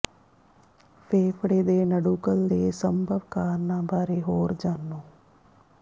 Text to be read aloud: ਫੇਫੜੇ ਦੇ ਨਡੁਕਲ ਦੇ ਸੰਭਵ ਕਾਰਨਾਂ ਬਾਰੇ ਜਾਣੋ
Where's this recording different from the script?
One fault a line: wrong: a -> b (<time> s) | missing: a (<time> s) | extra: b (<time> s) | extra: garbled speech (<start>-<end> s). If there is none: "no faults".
extra: ਹੋਰ (4.2 s)